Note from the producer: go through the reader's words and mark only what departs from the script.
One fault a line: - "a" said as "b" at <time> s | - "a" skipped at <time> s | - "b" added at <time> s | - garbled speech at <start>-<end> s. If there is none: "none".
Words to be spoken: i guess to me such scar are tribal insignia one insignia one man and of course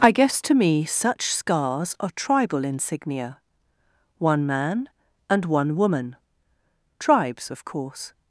- "scar" said as "scars" at 1.3 s
- "insignia" said as "man and" at 4.5 s
- "man and" said as "woman tribes" at 5.8 s